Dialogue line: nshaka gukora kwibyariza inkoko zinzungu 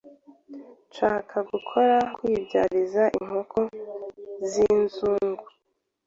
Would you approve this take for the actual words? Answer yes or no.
yes